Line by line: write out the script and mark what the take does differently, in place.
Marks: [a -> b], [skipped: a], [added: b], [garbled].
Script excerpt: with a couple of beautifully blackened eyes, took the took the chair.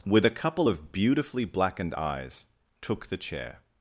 with a couple of beautifully blackened eyes, took the [skipped: took the] chair.